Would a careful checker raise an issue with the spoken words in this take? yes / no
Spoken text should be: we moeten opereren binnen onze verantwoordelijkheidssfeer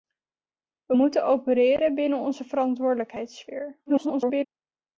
yes